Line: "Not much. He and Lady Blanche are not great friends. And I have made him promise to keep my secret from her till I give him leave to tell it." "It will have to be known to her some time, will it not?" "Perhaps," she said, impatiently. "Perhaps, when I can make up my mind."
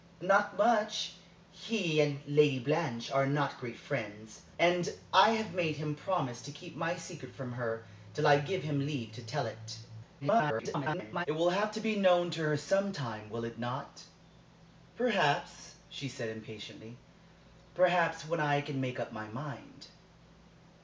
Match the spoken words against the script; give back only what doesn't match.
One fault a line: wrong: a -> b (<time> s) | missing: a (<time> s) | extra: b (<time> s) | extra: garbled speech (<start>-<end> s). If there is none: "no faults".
extra: garbled speech (10.2-11.3 s)